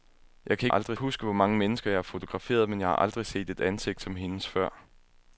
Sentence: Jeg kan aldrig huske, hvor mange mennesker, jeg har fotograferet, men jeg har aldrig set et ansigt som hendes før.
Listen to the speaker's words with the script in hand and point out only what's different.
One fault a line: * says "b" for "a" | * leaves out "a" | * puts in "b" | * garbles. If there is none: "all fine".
all fine